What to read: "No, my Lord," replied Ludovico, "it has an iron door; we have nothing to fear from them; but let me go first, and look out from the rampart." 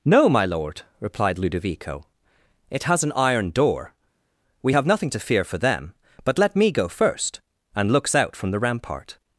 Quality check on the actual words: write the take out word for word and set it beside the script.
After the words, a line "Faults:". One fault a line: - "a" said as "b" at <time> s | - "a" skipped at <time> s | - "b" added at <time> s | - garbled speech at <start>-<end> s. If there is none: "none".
"No, my Lord," replied Ludovico, "it has an iron door; we have nothing to fear for them; but let me go first, and looks out from the rampart."
Faults:
- "from" said as "for" at 5.4 s
- "look" said as "looks" at 7.9 s